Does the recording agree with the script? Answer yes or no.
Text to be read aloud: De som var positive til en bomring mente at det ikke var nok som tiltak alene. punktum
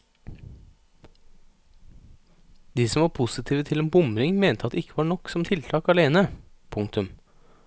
yes